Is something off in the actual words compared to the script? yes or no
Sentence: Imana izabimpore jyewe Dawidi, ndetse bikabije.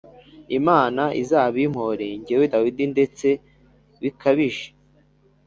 no